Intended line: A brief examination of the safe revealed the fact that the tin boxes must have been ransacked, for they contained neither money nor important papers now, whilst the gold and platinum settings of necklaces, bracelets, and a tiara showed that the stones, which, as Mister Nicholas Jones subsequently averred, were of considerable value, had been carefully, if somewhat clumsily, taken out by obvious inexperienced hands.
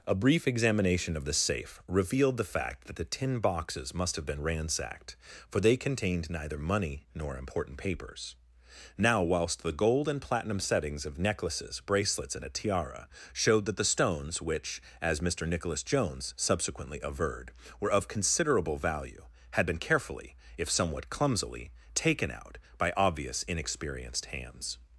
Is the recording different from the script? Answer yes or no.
no